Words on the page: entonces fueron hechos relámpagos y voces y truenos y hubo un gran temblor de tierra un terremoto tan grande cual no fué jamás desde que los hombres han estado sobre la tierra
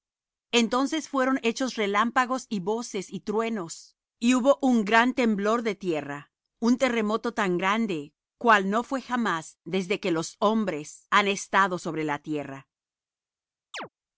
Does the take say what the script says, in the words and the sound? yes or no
no